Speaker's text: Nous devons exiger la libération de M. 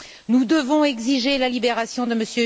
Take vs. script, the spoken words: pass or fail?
pass